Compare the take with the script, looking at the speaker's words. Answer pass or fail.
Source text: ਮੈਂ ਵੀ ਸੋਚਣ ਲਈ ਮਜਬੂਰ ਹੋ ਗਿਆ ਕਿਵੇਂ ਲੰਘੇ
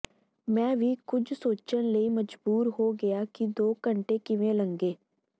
fail